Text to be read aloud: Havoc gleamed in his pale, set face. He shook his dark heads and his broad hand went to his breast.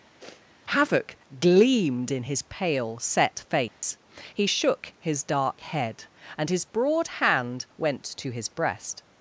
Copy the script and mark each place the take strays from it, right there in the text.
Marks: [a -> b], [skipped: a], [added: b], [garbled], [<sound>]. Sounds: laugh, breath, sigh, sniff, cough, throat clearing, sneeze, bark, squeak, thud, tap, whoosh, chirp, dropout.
[sniff] Havoc gleamed in his pale, set face. [dropout] He shook his dark [heads -> head] and his broad hand went to his breast.